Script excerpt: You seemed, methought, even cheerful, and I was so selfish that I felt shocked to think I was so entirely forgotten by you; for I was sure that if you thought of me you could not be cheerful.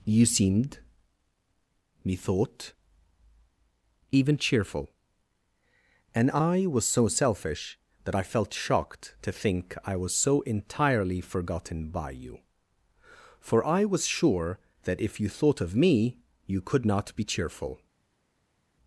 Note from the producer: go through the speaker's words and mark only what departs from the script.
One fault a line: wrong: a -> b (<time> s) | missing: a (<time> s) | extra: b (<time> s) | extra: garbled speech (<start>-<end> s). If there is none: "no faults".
no faults